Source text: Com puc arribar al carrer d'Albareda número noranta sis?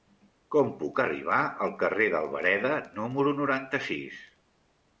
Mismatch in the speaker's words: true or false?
false